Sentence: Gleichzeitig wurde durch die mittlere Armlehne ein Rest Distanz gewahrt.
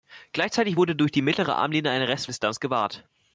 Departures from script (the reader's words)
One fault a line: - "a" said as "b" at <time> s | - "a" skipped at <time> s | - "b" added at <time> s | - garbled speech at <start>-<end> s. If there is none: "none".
none